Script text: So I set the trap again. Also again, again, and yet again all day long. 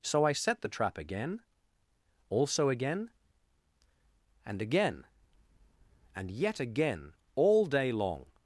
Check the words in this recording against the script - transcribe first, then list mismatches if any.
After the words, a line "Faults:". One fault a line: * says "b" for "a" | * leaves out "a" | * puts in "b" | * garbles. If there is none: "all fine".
So I set the trap again. Also again, and again, and yet again all day long.
Faults:
* puts in "and"